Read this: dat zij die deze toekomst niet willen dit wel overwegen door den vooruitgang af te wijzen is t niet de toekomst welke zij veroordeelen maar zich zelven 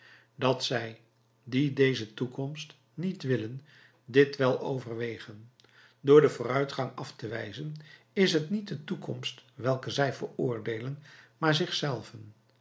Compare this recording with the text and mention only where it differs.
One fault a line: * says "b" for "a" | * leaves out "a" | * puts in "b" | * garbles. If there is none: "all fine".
all fine